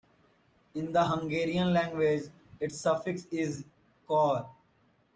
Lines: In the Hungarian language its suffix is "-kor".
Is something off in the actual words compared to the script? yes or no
no